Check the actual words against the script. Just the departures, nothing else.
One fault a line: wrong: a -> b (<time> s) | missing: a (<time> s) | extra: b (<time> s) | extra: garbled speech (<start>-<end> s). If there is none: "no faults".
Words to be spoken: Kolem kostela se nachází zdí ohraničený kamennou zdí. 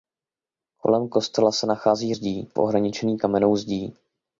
no faults